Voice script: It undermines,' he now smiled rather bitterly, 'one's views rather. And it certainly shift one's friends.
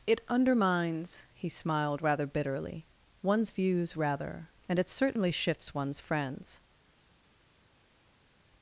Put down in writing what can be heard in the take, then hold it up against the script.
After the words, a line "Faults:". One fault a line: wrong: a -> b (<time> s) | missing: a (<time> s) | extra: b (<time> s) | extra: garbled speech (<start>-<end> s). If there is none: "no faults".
It undermines,' he smiled rather bitterly, 'one's views rather. And it certainly shifts one's friends.
Faults:
missing: now (1.5 s)
wrong: shift -> shifts (5.3 s)